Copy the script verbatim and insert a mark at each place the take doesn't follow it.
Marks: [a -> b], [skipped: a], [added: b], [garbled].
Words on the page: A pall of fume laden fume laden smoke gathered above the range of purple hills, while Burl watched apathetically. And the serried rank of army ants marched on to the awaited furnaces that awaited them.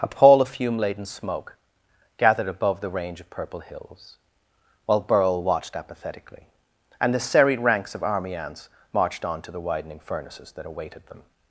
A pall of fume laden [skipped: fume laden] smoke gathered above the range of purple hills, while Burl watched apathetically. And the serried [rank -> ranks] of army ants marched on to the [awaited -> widening] furnaces that awaited them.